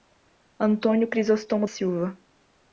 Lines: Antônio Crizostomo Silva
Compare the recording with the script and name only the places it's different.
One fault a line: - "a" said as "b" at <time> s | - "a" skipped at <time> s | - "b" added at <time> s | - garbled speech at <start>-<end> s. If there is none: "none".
none